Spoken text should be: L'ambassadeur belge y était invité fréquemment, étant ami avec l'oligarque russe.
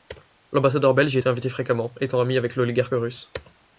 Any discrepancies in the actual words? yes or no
no